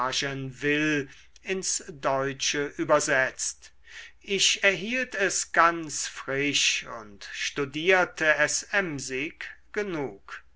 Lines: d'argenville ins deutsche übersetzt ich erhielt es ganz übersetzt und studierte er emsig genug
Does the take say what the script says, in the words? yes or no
no